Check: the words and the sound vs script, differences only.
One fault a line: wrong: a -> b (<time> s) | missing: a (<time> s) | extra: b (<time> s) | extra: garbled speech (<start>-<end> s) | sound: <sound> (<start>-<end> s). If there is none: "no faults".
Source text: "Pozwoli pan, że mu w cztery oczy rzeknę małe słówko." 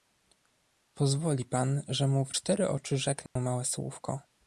sound: dropout (3.3-3.4 s)